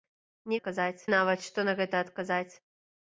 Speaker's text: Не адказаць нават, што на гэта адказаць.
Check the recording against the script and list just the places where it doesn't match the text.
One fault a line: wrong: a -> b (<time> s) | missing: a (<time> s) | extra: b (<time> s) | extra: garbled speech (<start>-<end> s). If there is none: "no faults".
no faults